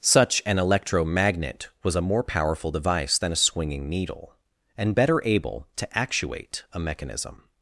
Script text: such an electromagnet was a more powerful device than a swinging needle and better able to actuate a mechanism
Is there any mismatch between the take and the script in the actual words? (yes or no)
no